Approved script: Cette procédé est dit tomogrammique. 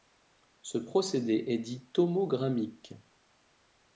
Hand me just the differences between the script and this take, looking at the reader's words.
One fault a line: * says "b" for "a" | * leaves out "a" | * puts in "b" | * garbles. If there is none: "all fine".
* says "Ce" for "Cette"